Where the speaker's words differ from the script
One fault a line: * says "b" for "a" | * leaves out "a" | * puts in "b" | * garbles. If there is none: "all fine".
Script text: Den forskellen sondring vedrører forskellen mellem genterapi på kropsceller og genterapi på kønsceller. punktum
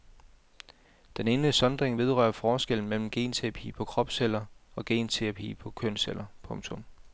* says "ene" for "forskellen"